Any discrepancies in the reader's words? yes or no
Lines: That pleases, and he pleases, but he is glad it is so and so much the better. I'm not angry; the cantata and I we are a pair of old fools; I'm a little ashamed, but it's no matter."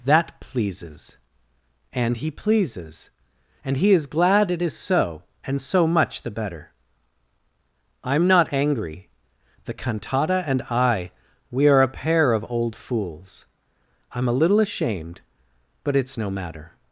yes